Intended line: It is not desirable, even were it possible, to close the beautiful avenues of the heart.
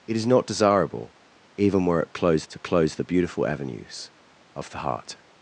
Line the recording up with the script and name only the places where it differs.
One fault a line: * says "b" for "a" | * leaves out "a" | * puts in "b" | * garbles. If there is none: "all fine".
* says "close" for "possible"